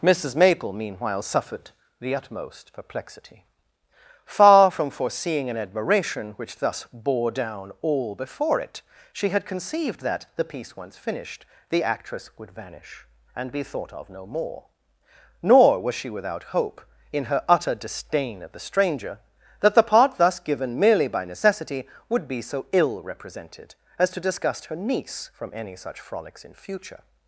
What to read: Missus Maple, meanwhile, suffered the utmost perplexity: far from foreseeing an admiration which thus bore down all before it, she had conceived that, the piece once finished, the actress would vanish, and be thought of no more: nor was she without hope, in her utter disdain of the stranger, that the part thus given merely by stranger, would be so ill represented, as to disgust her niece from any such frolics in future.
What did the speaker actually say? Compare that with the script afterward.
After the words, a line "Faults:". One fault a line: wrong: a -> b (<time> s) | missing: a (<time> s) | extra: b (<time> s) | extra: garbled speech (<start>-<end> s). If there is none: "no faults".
Missus Maple, meanwhile, suffered the utmost perplexity: far from foreseeing an admiration which thus bore down all before it, she had conceived that, the piece once finished, the actress would vanish, and be thought of no more: nor was she without hope, in her utter disdain of the stranger, that the part thus given merely by necessity, would be so ill represented, as to disgust her niece from any such frolics in future.
Faults:
wrong: stranger -> necessity (21.2 s)